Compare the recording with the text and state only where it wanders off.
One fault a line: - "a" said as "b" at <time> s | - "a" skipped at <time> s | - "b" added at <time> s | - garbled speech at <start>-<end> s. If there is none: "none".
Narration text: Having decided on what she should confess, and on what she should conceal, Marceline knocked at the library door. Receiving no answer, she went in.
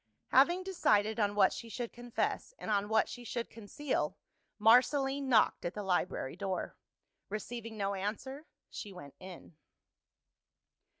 none